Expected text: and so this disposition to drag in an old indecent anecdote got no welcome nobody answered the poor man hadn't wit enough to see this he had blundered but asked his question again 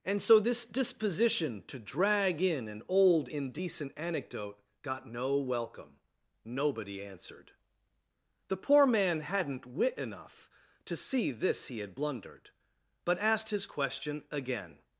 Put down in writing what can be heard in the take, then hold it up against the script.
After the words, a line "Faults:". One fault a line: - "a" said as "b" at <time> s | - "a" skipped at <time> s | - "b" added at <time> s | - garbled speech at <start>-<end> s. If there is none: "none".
and so this disposition to drag in an old indecent anecdote got no welcome nobody answered the poor man hadn't wit enough to see this he had blundered but asked his question again
Faults:
none